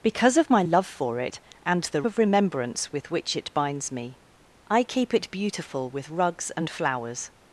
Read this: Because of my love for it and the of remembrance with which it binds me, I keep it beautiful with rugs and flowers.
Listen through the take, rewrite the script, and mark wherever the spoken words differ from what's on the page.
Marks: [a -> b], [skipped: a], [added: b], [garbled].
Because of my love for it and the of remembrance with which it binds me, I keep it beautiful with rugs and flowers.